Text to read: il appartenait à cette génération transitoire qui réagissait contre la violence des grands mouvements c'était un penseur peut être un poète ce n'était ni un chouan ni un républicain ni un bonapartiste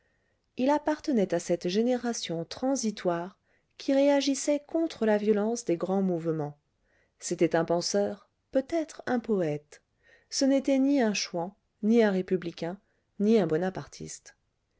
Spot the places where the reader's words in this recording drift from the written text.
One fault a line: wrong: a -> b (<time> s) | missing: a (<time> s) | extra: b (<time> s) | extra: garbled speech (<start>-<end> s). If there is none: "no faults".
no faults